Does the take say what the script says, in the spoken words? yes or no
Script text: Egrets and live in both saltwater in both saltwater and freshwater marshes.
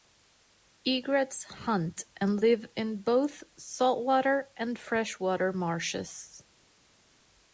no